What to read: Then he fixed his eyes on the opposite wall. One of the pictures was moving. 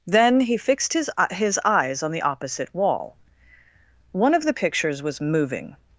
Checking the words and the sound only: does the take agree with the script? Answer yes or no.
no